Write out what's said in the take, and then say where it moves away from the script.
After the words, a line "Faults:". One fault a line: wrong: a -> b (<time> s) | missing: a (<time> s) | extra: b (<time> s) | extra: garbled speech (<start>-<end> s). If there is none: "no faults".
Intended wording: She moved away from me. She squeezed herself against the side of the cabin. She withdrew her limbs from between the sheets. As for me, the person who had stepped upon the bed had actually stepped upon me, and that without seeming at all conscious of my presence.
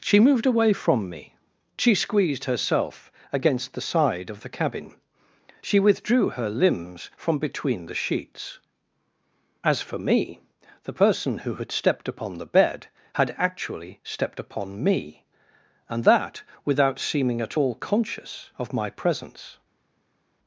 She moved away from me. She squeezed herself against the side of the cabin. She withdrew her limbs from between the sheets. As for me, the person who had stepped upon the bed had actually stepped upon me, and that without seeming at all conscious of my presence.
Faults:
no faults